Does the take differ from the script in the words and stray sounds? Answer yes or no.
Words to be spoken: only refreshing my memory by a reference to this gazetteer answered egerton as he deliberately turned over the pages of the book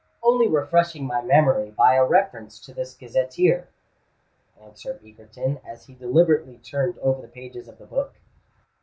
no